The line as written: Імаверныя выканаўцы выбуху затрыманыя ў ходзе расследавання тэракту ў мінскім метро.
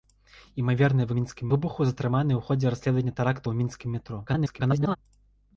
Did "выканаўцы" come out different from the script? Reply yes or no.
yes